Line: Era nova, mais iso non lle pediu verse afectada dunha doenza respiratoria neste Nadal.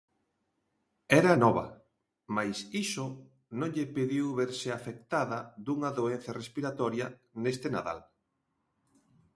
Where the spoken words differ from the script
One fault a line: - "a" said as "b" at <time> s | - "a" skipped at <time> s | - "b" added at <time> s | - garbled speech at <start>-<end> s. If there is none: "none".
none